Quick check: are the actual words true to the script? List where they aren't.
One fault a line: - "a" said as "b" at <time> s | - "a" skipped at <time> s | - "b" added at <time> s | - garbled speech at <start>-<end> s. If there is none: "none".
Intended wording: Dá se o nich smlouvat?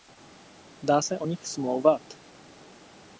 none